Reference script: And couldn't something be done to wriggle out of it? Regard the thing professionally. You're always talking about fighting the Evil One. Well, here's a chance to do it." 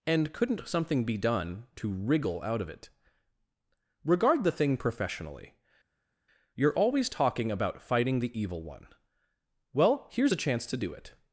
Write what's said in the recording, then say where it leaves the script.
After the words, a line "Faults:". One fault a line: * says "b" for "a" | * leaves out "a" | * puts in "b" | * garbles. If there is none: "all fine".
And couldn't something be done to wriggle out of it? Regard the thing professionally. You're always talking about fighting the Evil One. Well, here's a chance to do it."
Faults:
all fine